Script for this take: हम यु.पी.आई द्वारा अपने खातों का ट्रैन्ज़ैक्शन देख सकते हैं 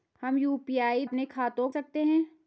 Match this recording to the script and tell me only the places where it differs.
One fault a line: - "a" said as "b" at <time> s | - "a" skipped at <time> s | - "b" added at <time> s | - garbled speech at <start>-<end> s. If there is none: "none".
- "द्वारा" skipped at 1.1 s
- "का ट्रैन्ज़ैक्शन देख" skipped at 1.7 s